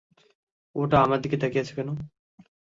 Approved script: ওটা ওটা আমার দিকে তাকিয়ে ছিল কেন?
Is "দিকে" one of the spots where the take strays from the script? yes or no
no